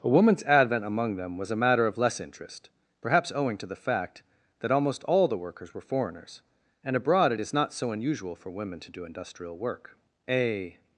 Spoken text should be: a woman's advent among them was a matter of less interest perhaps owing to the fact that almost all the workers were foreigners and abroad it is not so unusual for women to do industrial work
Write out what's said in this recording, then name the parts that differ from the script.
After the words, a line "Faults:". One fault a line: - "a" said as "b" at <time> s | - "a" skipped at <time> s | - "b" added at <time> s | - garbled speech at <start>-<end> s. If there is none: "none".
a woman's advent among them was a matter of less interest perhaps owing to the fact that almost all the workers were foreigners and abroad it is not so unusual for women to do industrial work a
Faults:
- "a" added at 10.3 s